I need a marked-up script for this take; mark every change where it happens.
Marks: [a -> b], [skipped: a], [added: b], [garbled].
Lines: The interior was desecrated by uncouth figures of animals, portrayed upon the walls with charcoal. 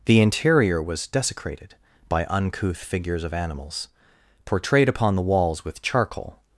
The interior was desecrated by uncouth figures of animals, portrayed upon the walls with charcoal.